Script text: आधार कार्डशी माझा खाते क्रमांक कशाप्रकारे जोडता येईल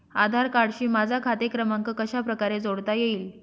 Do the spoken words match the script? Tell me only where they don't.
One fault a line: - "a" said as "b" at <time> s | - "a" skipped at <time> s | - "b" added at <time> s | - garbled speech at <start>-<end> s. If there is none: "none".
none